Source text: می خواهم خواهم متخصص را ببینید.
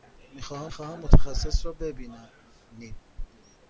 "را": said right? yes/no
yes